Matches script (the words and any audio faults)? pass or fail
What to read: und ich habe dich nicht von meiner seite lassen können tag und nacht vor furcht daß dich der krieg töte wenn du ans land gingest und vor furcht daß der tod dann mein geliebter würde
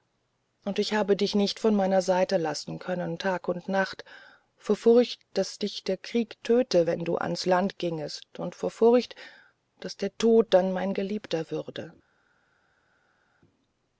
pass